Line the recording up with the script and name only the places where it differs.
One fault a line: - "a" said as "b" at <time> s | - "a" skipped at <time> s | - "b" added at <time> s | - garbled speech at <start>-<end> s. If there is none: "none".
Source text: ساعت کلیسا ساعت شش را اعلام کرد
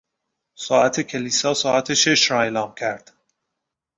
none